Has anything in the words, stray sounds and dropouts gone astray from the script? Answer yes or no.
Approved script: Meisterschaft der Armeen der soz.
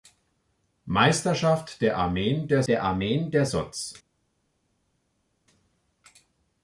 yes